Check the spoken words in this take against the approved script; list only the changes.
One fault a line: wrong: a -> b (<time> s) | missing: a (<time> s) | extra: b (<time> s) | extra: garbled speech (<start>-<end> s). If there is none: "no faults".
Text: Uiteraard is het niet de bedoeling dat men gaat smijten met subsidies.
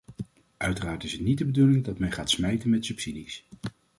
no faults